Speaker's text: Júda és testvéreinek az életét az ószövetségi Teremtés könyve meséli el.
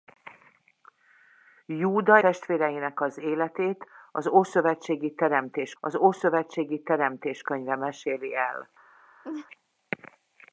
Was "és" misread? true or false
true